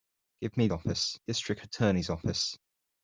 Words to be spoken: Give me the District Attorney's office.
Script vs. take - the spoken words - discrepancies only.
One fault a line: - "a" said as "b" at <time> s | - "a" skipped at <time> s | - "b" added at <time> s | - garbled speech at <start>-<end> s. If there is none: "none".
- "the" said as "office" at 0.7 s